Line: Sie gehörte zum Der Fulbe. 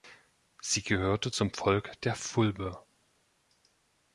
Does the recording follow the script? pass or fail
fail